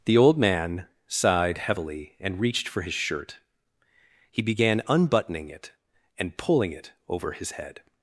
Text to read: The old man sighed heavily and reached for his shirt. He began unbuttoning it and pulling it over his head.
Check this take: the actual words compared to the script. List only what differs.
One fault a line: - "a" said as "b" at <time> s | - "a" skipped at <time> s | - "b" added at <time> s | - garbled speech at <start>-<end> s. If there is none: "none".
none